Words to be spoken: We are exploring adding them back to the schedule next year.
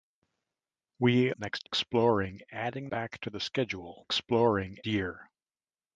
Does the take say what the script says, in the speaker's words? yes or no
no